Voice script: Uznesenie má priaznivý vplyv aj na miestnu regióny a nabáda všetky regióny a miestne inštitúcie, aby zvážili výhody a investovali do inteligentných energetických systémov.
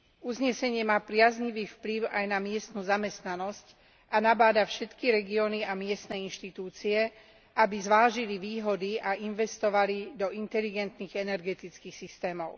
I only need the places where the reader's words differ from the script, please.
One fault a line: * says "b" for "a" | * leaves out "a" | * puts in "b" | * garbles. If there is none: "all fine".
* says "zamestnanosť" for "regióny"